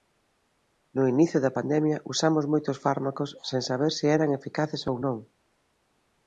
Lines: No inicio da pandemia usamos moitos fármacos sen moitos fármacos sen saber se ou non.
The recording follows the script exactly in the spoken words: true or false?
false